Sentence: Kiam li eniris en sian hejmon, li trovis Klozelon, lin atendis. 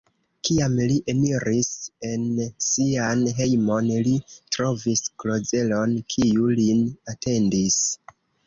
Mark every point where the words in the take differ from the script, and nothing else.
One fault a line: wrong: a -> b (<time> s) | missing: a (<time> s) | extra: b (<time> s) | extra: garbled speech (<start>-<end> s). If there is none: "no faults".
extra: kiu (6.2 s)